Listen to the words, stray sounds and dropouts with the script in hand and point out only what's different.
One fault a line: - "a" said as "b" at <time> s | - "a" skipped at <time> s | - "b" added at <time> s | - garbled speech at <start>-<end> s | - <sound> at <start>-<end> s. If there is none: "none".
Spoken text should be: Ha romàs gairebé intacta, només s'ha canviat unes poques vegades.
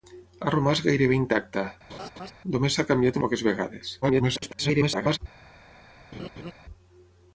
- laugh at 1.9-2.3 s
- "unes" skipped at 3.2 s
- garbled speech at 4.0-5.2 s
- laugh at 6.1-6.5 s